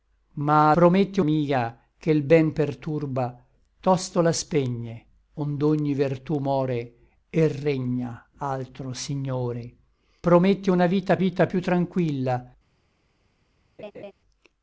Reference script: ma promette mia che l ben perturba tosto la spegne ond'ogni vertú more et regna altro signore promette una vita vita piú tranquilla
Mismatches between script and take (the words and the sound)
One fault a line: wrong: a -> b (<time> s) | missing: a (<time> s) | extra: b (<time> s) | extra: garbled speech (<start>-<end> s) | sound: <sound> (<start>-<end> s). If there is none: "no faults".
sound: laugh (13.8-14.1 s)